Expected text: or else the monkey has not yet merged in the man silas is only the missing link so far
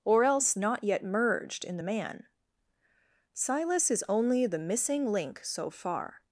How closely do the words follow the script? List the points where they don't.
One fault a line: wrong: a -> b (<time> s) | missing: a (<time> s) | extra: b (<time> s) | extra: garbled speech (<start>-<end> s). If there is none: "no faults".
missing: the monkey has (0.5 s)